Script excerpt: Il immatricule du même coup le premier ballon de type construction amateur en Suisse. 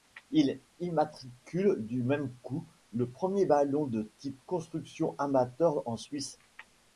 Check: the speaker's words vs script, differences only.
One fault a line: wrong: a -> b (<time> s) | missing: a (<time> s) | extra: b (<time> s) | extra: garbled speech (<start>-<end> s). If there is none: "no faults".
no faults